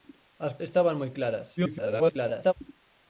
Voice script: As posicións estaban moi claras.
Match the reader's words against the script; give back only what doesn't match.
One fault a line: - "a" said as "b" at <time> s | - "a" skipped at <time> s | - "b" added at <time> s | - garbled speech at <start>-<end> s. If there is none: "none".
- "posicións" skipped at 0.5 s
- garbled speech at 1.6-2.5 s